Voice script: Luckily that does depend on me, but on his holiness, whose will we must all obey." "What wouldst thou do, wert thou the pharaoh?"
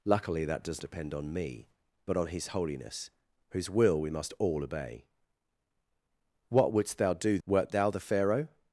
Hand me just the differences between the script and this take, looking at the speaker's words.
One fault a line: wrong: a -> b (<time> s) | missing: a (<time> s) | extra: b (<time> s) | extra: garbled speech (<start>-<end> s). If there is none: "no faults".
no faults